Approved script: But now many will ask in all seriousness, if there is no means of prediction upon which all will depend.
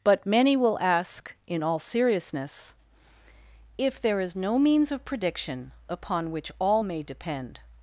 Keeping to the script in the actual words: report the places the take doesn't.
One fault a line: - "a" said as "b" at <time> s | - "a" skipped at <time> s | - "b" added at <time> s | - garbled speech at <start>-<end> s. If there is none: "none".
- "now" skipped at 0.2 s
- "will" said as "may" at 6.8 s